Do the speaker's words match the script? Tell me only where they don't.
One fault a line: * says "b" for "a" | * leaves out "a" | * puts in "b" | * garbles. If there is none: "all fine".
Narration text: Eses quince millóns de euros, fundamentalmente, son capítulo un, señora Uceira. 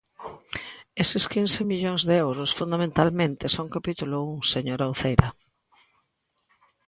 all fine